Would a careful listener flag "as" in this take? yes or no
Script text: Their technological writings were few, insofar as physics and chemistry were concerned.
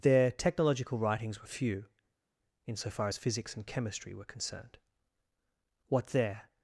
no